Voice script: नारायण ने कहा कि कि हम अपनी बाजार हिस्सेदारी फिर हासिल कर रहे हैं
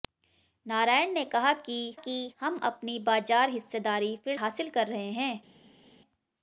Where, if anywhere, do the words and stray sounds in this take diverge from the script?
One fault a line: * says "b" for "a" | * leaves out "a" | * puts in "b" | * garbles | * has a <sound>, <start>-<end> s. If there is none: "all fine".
all fine